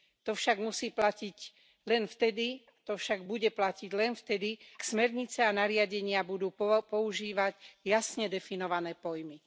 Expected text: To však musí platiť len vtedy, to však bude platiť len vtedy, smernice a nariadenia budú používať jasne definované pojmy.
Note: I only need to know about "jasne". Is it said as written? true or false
true